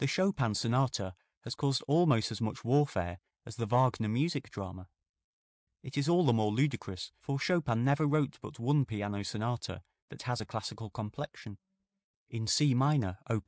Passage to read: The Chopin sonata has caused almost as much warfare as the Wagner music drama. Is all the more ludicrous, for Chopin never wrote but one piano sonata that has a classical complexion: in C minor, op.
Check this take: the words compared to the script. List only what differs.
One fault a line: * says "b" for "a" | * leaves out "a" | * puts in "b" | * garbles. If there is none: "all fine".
* puts in "It"